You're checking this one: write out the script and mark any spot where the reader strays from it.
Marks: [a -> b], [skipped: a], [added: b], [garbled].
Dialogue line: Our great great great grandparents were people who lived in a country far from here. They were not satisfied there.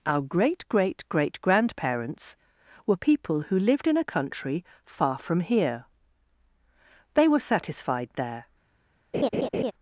Our great great great grandparents were people who lived in a country far from here. They were [skipped: not] satisfied there.